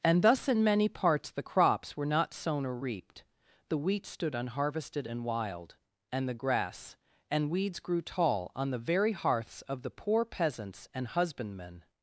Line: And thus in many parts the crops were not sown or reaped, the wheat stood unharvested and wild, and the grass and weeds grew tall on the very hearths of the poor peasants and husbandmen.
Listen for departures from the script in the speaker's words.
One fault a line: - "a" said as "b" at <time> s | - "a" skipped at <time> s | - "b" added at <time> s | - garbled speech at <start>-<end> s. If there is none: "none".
none